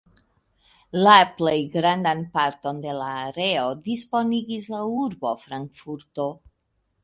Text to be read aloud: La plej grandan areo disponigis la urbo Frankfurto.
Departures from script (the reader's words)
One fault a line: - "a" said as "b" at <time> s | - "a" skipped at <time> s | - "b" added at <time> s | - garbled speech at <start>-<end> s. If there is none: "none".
- "parton de la" added at 2.4 s